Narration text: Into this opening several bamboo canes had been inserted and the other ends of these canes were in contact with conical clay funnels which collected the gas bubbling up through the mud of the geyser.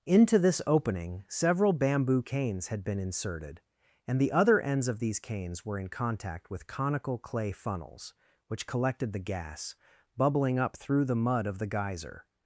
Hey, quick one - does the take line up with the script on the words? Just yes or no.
yes